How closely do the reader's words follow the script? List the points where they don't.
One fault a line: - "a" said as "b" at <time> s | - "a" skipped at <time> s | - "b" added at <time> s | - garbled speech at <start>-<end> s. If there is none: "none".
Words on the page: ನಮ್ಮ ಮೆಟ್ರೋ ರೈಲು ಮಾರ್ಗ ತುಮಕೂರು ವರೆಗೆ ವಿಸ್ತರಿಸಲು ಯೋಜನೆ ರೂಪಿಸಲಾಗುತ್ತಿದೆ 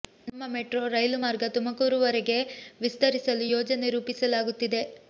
none